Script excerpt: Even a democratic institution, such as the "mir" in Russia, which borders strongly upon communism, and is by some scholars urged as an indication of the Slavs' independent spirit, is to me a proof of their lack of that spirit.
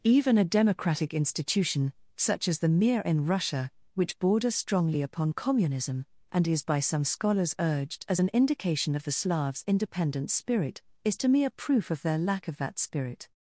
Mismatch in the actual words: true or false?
false